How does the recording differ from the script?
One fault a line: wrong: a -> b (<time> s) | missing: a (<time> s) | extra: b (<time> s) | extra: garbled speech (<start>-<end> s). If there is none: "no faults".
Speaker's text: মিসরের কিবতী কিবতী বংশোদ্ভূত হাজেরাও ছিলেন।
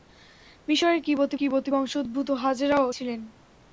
no faults